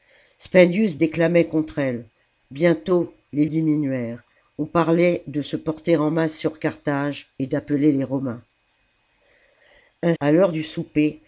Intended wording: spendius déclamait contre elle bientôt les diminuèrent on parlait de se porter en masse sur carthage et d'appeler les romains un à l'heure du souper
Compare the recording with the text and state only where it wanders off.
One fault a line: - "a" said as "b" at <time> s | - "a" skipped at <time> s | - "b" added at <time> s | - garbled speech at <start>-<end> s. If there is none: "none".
none